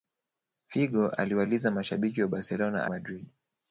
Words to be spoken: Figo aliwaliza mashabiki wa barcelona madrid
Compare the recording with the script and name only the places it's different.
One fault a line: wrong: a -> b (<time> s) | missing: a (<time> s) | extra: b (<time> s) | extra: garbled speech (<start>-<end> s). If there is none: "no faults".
no faults